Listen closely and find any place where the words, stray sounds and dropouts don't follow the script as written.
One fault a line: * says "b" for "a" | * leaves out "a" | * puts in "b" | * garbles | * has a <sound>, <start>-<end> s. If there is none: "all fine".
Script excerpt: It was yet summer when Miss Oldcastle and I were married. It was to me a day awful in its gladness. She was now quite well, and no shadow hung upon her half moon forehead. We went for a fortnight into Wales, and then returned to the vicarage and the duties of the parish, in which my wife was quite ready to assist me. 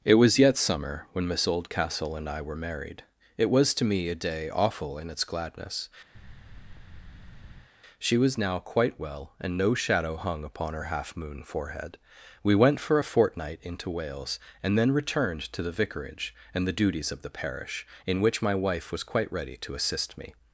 * has a thud, 6.1-7.7 s